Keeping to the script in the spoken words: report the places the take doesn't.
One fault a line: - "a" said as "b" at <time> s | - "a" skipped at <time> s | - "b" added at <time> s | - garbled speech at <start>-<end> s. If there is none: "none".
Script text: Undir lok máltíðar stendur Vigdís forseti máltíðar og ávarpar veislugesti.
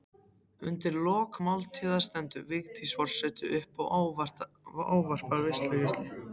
- "máltíðar" said as "upp" at 3.6 s